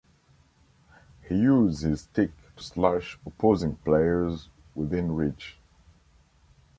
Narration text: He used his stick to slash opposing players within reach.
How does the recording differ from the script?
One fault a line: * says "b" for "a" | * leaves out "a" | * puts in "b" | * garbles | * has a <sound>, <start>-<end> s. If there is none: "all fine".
all fine